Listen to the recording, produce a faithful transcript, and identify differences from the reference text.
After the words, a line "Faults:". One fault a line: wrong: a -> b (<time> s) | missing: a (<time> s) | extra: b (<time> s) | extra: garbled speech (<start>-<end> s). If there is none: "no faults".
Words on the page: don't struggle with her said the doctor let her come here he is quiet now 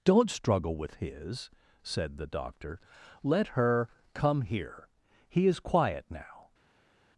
don't struggle with his said the doctor let her come here he is quiet now
Faults:
wrong: her -> his (0.9 s)